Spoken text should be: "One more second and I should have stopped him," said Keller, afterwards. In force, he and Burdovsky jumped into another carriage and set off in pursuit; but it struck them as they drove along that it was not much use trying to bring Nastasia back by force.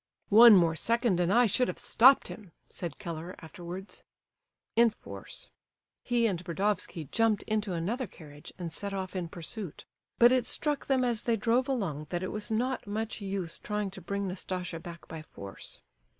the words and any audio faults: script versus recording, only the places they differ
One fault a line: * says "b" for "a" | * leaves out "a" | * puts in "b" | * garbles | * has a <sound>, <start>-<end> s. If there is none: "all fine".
all fine